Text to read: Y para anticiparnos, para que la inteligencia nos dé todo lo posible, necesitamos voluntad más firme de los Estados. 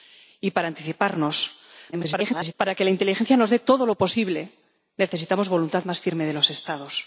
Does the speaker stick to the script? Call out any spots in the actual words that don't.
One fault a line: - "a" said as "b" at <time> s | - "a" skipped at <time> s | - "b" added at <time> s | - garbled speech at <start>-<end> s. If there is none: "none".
- garbled speech at 1.9-2.5 s